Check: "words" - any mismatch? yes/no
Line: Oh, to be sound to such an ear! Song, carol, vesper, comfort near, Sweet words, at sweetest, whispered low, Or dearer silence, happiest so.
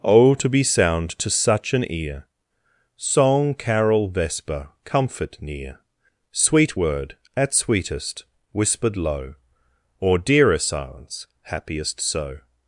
yes